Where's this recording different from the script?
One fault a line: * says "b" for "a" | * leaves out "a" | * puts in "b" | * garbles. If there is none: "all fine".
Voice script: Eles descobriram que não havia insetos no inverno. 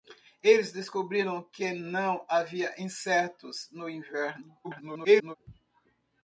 * garbles